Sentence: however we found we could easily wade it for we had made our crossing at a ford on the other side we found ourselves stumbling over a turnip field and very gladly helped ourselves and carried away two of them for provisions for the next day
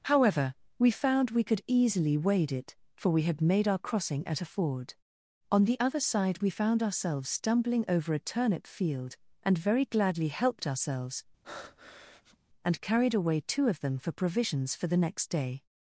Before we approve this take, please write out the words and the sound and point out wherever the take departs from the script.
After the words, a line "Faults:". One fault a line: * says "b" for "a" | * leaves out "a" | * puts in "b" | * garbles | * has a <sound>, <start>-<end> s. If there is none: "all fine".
however we found we could easily wade it for we had made our crossing at a ford on the other side we found ourselves stumbling over a turnip field and very gladly helped ourselves and carried away two of them for provisions for the next day
Faults:
* has a breath, 11.4-12.4 s